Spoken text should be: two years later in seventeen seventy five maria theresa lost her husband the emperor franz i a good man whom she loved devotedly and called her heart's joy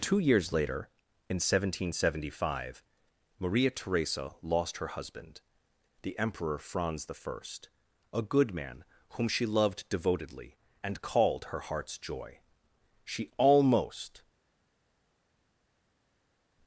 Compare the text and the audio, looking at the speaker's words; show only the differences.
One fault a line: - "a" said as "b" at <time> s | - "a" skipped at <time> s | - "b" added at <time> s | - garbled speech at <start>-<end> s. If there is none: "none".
- "she almost" added at 13.0 s